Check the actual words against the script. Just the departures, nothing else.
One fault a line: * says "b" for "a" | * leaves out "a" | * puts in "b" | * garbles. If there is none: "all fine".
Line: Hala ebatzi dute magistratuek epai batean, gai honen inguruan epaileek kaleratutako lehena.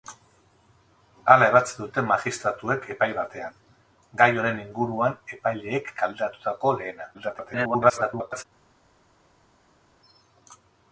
* garbles